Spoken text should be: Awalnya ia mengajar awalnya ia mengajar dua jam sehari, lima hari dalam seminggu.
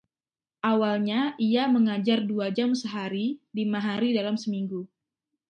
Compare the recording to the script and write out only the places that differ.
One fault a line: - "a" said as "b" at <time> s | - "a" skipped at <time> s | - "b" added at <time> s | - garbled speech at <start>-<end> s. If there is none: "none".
- "awalnya ia mengajar" skipped at 2.2 s